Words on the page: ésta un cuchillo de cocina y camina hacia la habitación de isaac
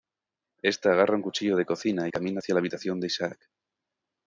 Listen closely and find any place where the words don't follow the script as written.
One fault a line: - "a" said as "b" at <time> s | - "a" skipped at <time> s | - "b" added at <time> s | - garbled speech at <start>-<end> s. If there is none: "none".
- "agarra" added at 0.9 s